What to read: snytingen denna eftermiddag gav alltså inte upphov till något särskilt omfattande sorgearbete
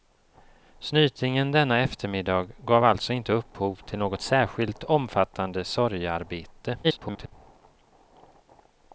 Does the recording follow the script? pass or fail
fail